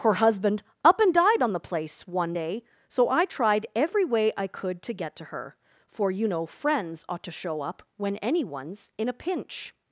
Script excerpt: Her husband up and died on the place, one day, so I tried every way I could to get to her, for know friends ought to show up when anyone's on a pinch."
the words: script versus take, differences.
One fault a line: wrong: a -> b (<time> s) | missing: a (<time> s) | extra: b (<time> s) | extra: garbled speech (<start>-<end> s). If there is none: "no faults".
extra: you (6.1 s)
wrong: on -> in (9.0 s)